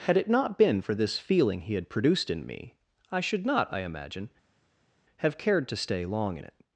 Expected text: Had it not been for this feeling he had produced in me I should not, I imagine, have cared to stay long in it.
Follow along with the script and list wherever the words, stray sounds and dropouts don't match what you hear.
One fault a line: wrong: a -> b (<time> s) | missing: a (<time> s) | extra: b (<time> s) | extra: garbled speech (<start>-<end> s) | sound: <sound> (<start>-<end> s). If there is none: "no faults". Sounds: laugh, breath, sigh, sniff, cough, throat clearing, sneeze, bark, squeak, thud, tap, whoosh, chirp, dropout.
no faults